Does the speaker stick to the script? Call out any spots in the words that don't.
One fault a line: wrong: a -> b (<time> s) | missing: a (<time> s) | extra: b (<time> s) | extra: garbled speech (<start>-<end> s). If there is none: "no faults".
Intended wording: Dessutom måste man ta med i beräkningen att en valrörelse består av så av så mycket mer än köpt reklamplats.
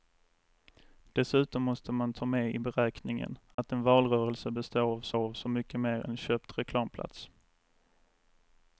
no faults